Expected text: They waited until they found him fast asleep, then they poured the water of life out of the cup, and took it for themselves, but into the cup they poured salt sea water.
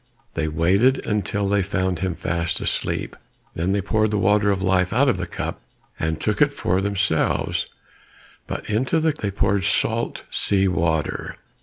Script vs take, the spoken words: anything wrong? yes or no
yes